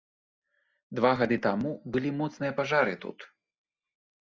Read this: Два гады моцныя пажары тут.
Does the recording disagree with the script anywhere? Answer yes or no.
yes